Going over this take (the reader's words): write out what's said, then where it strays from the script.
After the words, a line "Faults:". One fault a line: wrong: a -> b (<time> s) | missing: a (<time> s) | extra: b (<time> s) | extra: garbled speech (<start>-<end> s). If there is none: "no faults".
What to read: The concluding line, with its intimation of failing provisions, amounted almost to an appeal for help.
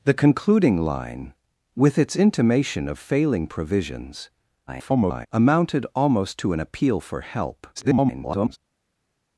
The concluding line, with its intimation of failing provisions, [garbled] amounted almost to an appeal for help. [garbled]
Faults:
extra: garbled speech (4.7-5.3 s)
extra: garbled speech (7.8-8.6 s)